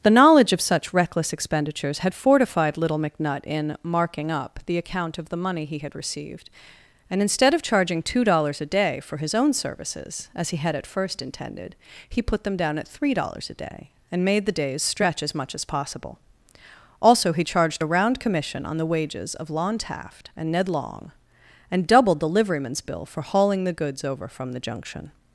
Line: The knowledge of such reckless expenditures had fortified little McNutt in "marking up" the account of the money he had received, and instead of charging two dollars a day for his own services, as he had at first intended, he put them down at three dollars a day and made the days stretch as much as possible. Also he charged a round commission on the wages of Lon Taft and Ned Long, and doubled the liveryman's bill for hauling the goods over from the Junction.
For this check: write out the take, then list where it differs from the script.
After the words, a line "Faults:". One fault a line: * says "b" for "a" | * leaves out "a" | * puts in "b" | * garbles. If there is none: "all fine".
The knowledge of such reckless expenditures had fortified little McNutt in "marking up" the account of the money he had received, and instead of charging two dollars a day for his own services, as he had at first intended, he put them down at three dollars a day and made the days stretch as much as possible. Also he charged a round commission on the wages of Lon Taft and Ned Long, and doubled the liveryman's bill for hauling the goods over from the Junction.
Faults:
all fine